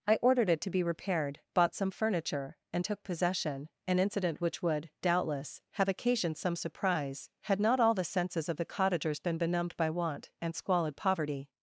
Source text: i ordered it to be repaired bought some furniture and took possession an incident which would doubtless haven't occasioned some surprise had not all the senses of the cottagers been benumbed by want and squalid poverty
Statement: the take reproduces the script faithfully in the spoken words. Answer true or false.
false